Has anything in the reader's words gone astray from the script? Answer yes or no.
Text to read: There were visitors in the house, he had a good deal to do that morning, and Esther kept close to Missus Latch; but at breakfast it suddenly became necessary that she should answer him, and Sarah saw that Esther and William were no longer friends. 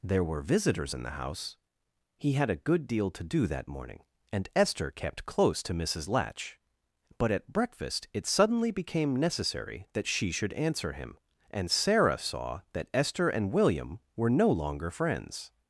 no